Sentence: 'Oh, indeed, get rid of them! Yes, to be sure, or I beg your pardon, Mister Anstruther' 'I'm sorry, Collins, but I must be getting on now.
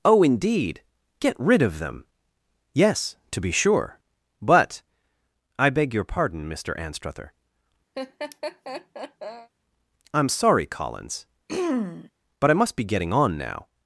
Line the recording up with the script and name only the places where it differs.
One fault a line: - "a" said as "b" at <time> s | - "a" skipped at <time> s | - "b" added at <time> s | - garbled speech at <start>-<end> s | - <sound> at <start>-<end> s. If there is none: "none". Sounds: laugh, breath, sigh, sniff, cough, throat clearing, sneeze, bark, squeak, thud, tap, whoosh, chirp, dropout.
- "or" said as "but" at 4.4 s
- laugh at 7.9-9.5 s
- throat clearing at 11.5-12.1 s